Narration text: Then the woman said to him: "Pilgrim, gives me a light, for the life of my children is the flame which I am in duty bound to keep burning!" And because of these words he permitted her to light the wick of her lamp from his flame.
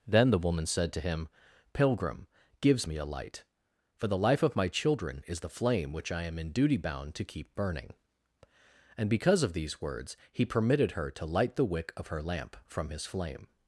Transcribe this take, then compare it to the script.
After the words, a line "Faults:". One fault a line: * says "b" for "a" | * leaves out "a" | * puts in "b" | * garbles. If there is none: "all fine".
Then the woman said to him: "Pilgrim, gives me a light, for the life of my children is the flame which I am in duty bound to keep burning!" And because of these words he permitted her to light the wick of her lamp from his flame.
Faults:
all fine